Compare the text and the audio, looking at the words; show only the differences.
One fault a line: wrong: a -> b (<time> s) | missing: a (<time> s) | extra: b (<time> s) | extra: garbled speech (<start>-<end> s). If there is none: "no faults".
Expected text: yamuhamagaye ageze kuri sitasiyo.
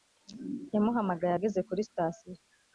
no faults